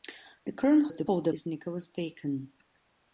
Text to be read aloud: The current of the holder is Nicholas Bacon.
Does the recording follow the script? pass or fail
pass